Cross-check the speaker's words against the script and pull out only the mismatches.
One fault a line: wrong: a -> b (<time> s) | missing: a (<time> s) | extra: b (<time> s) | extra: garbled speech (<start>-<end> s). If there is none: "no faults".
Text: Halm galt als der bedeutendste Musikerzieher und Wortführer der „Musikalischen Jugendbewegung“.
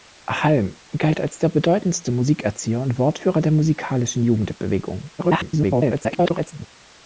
extra: garbled speech (5.2-6.7 s)